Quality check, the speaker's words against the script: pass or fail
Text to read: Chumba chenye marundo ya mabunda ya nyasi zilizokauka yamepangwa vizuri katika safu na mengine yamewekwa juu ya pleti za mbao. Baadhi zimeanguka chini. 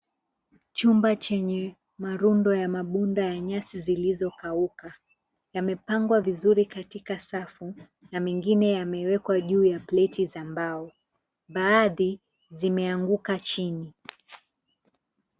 pass